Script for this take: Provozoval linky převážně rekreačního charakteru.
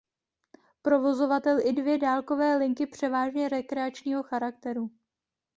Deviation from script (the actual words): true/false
true